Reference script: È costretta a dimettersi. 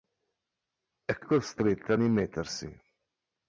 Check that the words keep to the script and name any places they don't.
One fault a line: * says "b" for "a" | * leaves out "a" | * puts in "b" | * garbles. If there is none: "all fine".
all fine